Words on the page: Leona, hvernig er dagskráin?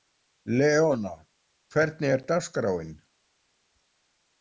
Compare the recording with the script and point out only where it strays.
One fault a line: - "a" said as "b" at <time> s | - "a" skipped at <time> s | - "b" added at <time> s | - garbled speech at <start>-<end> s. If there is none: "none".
none